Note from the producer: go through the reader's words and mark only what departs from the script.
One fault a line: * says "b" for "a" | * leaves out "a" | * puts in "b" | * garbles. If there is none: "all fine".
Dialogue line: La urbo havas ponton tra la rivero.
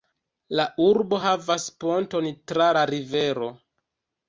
all fine